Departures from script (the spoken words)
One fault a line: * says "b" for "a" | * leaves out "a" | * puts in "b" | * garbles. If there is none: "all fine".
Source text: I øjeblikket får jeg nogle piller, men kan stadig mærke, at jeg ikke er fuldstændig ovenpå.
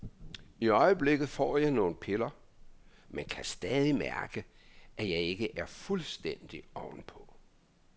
all fine